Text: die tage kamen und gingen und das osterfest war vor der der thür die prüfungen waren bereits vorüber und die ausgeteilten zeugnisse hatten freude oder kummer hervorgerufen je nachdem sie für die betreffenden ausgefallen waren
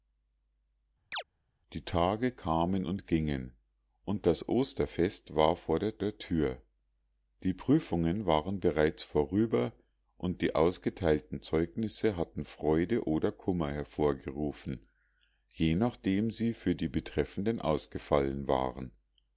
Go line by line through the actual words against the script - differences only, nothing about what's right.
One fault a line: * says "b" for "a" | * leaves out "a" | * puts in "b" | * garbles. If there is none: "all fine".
all fine